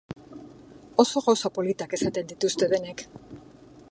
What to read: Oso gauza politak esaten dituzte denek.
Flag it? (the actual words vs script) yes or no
no